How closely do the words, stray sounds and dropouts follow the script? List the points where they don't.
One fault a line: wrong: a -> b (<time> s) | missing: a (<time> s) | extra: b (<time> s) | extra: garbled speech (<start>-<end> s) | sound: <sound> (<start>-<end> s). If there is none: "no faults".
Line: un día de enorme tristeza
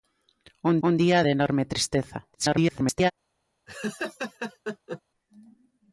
extra: un (0.9 s)
extra: garbled speech (2.3-3.1 s)
sound: laugh (3.7-5.0 s)